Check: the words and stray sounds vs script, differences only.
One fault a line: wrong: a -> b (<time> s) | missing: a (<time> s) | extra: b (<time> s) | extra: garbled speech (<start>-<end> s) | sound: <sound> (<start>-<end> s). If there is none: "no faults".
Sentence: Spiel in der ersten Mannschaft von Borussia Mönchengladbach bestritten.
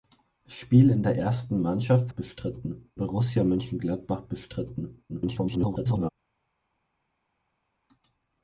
wrong: von -> bestritten (2.1 s)
extra: garbled speech (5.1-6.1 s)